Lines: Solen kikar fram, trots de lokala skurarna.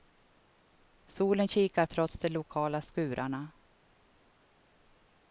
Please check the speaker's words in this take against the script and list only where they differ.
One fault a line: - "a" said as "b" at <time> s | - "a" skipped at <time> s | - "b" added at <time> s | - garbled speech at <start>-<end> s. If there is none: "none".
- "fram" skipped at 1.9 s